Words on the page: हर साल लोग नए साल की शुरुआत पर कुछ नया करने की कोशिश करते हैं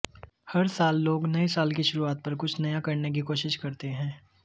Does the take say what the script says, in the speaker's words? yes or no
yes